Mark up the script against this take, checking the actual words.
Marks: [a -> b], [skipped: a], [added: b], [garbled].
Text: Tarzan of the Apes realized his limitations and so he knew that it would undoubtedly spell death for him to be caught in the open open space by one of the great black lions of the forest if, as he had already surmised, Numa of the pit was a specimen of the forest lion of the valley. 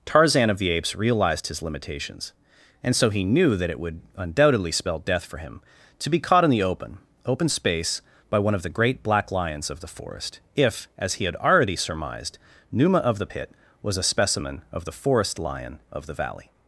Tarzan of the Apes realized his limitations and so he knew that it would undoubtedly spell death for him to be caught in the open open space by one of the great black lions of the forest if, as he had already surmised, Numa of the pit was a specimen of the forest lion of the valley.